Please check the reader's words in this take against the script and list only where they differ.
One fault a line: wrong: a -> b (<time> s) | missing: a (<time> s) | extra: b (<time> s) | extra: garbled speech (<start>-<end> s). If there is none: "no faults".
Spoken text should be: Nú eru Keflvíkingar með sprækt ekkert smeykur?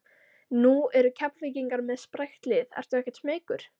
extra: lið ertu (2.5 s)